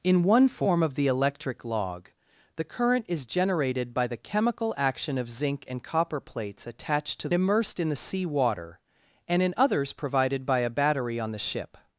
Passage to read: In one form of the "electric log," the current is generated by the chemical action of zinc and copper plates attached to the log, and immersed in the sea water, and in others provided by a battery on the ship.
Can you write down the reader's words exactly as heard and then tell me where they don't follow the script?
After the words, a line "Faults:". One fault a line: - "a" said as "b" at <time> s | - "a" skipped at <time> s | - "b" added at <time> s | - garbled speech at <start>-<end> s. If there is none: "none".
In one form of the "electric log," the current is generated by the chemical action of zinc and copper plates attached to immersed in the sea water, and in others provided by a battery on the ship.
Faults:
- "the log and" skipped at 7.3 s